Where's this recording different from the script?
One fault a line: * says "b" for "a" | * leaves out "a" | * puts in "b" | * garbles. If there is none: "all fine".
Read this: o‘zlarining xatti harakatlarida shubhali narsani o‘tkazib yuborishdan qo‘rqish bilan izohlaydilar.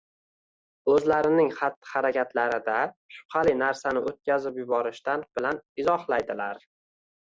* leaves out "qo‘rqish"